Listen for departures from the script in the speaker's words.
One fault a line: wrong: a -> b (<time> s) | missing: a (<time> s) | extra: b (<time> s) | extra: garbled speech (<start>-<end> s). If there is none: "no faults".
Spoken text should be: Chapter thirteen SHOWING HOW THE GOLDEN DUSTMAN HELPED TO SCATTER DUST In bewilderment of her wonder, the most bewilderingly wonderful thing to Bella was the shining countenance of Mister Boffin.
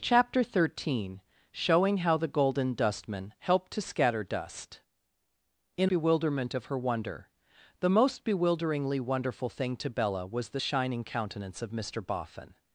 no faults